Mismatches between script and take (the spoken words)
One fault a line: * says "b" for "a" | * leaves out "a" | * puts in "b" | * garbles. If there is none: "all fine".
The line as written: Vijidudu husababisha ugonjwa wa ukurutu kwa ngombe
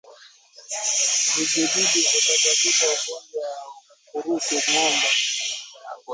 * leaves out "kwa"